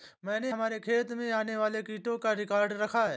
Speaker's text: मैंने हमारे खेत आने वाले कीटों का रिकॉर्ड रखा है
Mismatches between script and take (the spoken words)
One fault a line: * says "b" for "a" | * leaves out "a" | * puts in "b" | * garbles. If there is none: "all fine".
* puts in "में"